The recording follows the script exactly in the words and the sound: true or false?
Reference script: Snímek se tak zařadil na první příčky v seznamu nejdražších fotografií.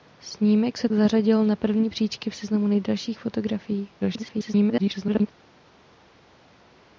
false